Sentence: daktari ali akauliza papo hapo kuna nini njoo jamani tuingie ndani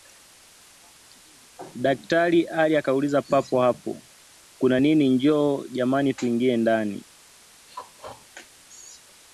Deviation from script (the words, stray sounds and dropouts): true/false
true